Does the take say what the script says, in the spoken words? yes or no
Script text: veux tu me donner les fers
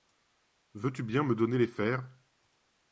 no